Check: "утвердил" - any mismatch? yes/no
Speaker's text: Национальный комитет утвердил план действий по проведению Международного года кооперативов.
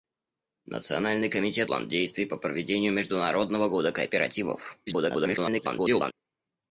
yes